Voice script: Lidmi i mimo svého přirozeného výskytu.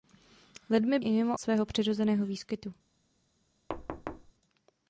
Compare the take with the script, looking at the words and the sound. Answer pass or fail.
fail